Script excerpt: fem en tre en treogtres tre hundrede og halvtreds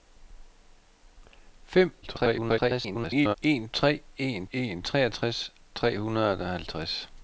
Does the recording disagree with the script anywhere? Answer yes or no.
yes